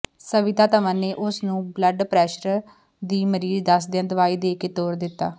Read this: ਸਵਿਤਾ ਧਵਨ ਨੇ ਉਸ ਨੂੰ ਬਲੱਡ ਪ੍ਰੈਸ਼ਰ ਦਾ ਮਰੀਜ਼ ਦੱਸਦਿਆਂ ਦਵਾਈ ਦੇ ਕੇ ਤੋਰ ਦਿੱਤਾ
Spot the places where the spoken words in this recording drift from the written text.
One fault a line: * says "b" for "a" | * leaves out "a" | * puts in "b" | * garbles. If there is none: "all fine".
* says "ਦੀ" for "ਦਾ"